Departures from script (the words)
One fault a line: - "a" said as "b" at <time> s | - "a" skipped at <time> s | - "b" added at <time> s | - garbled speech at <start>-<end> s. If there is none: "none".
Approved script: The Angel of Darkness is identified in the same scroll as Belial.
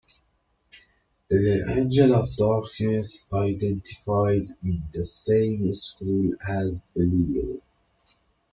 - "is" skipped at 3.3 s